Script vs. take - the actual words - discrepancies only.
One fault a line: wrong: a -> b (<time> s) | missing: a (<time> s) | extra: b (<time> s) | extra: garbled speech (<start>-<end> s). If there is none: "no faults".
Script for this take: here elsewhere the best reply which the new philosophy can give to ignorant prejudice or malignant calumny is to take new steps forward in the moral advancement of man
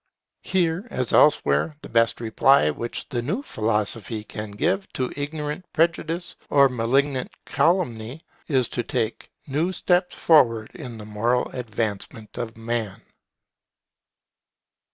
extra: as (0.9 s)